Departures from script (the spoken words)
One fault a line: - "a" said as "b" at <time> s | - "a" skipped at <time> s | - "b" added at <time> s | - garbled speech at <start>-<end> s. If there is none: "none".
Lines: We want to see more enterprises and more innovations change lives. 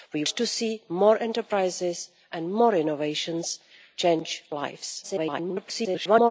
- "want" skipped at 0.2 s
- garbled speech at 5.0-6.3 s